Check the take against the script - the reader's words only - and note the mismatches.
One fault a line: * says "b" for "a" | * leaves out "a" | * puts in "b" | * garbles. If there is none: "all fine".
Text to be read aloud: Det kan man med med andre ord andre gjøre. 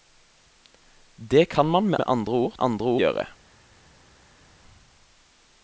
all fine